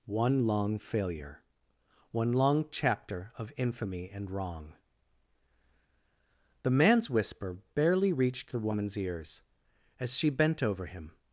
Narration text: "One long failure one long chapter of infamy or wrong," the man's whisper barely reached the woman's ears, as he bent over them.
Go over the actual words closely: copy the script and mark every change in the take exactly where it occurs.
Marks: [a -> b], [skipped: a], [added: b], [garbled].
"One long failure one long chapter of infamy [or -> and] wrong," the man's whisper barely reached the woman's ears, as [he -> she] bent over [them. -> him]